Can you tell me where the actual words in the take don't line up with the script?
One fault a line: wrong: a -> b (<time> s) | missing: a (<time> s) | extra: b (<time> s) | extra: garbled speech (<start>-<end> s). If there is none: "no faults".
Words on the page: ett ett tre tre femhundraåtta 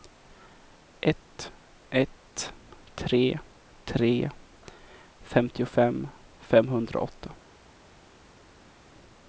extra: femtiofem (5.2 s)